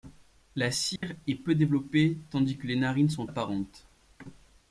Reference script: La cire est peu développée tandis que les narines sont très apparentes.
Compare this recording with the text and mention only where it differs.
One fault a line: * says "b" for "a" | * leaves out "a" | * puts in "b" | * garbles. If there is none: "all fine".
* leaves out "très"